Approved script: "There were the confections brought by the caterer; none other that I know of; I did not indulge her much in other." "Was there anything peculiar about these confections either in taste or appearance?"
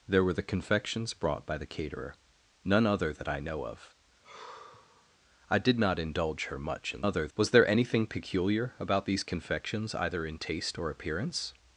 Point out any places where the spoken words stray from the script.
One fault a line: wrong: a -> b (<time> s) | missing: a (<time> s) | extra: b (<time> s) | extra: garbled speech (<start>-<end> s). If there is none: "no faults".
no faults